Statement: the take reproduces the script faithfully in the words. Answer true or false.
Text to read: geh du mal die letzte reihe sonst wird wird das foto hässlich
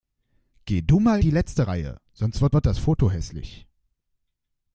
true